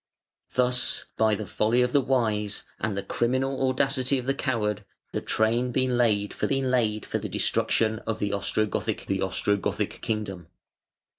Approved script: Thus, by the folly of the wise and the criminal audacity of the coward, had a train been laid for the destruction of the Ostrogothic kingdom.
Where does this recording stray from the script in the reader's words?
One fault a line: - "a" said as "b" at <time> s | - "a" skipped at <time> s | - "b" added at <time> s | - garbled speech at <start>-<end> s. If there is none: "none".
- "had" skipped at 4.8 s
- "been laid for" added at 6.5 s
- "the Ostrogothic" added at 9.1 s